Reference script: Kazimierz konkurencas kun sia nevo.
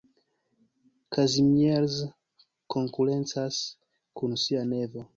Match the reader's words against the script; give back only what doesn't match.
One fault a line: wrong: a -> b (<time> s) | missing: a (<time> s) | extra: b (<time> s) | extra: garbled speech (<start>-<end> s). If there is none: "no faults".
no faults